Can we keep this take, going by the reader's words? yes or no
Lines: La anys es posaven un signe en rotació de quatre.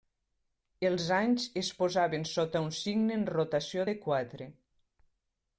no